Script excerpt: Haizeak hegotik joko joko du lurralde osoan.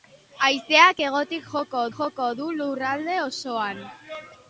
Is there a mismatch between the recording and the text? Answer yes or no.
no